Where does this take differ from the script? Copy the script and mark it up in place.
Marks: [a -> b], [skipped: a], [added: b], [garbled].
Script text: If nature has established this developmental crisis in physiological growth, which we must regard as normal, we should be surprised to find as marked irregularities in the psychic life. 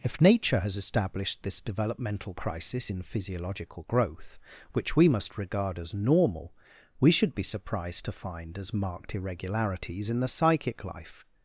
If nature has established this developmental crisis in physiological growth, which we must regard as normal, we should be surprised to find as marked irregularities in the psychic life.